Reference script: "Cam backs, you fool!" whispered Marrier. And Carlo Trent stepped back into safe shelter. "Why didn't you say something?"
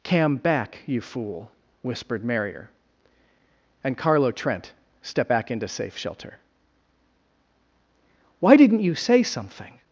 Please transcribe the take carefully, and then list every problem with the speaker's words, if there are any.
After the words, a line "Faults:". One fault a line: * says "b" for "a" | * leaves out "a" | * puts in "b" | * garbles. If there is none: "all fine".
"Cam back, you fool!" whispered Marrier. And Carlo Trent stepped back into safe shelter. "Why didn't you say something?"
Faults:
* says "back" for "backs"